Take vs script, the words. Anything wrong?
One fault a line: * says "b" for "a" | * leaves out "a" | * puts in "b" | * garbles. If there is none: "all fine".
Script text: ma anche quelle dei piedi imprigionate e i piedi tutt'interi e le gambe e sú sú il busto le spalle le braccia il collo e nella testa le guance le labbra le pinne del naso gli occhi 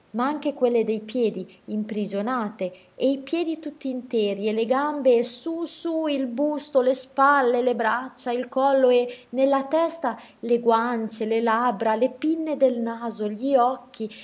all fine